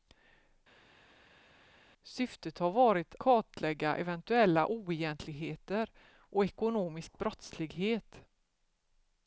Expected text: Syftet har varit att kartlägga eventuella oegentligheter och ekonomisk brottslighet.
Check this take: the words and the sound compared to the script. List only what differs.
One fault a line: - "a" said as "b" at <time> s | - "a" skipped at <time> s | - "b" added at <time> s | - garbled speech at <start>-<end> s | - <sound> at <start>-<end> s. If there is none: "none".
- "att" skipped at 3.1 s